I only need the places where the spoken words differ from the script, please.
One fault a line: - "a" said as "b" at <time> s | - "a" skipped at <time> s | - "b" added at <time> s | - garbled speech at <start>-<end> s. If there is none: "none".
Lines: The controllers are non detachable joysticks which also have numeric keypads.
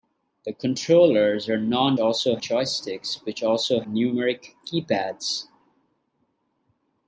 - "detachable" said as "also" at 2.0 s
- "have" skipped at 3.8 s